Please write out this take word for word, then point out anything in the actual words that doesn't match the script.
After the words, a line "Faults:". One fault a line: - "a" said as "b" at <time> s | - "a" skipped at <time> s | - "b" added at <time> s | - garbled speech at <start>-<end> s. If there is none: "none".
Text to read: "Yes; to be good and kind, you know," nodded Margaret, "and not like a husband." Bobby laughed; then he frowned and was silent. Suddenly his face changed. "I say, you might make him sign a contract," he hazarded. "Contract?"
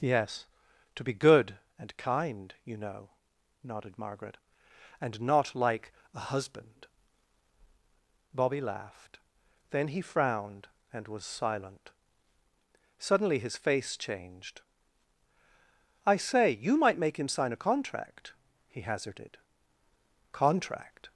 "Yes; to be good and kind, you know," nodded Margaret, "and not like a husband." Bobby laughed; then he frowned and was silent. Suddenly his face changed. "I say, you might make him sign a contract," he hazarded. "Contract?"
Faults:
none